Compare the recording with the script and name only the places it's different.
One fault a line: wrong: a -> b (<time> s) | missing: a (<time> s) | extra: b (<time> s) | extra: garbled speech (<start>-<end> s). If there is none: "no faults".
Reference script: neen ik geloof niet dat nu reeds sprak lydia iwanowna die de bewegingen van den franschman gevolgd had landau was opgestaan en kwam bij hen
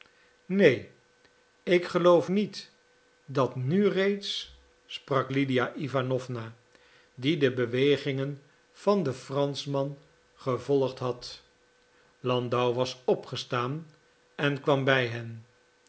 no faults